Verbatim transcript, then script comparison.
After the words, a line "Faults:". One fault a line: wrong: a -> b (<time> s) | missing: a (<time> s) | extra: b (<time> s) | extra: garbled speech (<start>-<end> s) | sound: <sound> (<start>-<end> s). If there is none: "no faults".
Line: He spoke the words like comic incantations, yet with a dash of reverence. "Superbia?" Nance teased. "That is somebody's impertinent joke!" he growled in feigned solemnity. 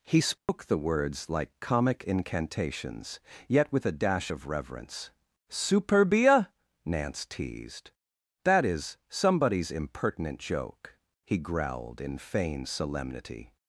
He spoke the words like comic incantations, yet with a dash of reverence. "Superbia?" Nance teased. "That is somebody's impertinent joke!" he growled in feigned solemnity.
Faults:
sound: dropout (0.4-0.5 s)